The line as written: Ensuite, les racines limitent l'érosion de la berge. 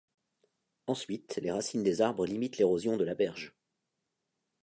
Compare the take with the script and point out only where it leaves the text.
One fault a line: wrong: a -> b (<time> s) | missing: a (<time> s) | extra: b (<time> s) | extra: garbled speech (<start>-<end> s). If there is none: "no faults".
extra: des arbres (1.8 s)